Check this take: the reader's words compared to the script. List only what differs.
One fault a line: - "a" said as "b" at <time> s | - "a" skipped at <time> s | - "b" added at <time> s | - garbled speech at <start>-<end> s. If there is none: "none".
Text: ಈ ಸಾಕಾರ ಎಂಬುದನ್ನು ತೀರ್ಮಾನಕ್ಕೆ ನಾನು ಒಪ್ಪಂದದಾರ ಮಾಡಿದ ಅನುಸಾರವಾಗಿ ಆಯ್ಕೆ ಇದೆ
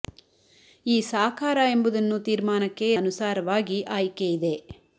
- "ನಾನು ಒಪ್ಪಂದದಾರ ಮಾಡಿದ" skipped at 2.9 s